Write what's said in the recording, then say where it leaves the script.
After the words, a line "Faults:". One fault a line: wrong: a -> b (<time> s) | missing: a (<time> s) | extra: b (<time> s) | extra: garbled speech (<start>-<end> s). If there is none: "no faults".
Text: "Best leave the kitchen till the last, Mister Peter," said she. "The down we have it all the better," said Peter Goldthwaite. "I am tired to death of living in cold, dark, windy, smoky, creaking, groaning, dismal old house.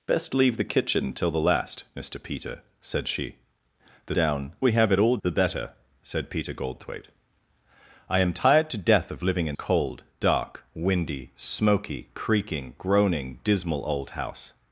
"Best leave the kitchen till the last, Mister Peter," said she. "The down we have it all the better," said Peter Goldthwaite. "I am tired to death of living in cold, dark, windy, smoky, creaking, groaning, dismal old house.
Faults:
no faults